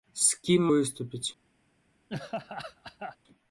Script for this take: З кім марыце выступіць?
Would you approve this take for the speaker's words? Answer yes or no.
no